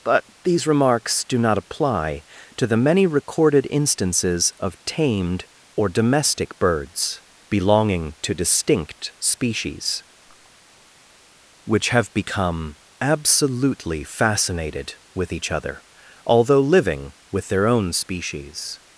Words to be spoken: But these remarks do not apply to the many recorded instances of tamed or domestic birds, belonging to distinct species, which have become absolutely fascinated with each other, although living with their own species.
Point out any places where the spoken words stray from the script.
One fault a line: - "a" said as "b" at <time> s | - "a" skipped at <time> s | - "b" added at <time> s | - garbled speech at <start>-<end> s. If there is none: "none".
none